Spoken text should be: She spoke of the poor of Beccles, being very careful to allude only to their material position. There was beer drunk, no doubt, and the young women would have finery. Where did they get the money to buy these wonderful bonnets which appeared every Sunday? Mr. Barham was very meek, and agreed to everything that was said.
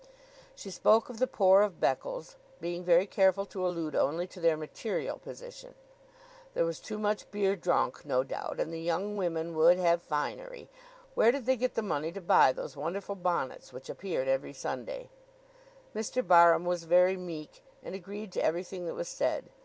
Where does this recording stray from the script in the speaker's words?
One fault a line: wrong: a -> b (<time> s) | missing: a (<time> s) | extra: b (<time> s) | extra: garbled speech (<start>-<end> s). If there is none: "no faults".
extra: too much (6.8 s)
wrong: these -> those (12.5 s)